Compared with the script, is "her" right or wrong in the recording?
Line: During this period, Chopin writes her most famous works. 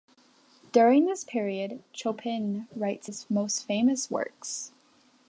wrong